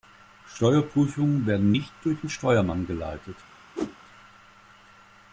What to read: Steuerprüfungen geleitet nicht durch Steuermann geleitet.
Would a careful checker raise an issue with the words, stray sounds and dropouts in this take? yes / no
yes